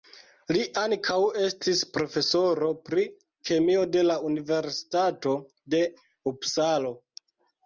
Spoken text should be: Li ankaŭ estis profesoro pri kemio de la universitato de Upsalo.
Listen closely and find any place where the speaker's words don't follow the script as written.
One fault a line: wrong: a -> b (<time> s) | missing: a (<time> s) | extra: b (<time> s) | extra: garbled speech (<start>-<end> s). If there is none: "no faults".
no faults